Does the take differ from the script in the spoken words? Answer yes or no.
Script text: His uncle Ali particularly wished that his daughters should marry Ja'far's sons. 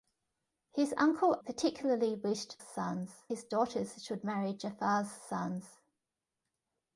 yes